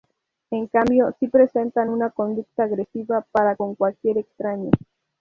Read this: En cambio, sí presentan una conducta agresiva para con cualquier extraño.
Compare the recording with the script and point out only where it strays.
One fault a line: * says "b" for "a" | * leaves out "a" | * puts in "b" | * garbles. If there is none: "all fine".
all fine